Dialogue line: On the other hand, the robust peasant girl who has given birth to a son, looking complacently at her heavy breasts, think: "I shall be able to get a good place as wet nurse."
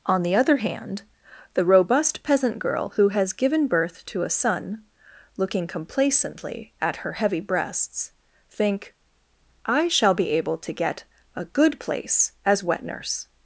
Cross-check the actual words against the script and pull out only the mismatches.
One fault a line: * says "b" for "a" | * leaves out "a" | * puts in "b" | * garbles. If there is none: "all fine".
all fine